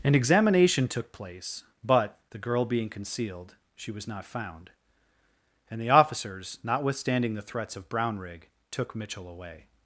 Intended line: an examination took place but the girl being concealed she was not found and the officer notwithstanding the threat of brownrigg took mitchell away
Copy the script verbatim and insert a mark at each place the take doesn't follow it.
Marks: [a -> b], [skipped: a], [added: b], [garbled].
an examination took place but the girl being concealed she was not found and the [officer -> officers] notwithstanding the [threat -> threats] of brownrigg took mitchell away